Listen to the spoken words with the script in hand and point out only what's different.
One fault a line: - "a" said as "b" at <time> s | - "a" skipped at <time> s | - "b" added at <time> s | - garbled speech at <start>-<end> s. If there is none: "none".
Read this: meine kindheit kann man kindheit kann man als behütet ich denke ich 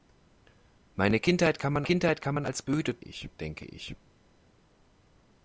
none